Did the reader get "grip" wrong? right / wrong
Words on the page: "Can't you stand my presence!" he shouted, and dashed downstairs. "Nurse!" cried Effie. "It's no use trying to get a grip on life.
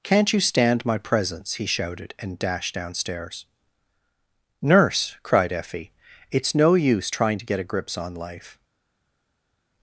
wrong